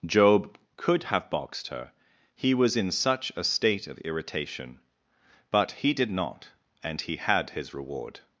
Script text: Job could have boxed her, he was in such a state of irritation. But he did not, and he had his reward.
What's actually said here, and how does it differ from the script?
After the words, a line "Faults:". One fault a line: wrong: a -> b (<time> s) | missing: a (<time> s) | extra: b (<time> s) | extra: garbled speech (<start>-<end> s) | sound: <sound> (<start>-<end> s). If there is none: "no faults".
Job could have boxed her, he was in such a state of irritation. But he did not, and he had his reward.
Faults:
no faults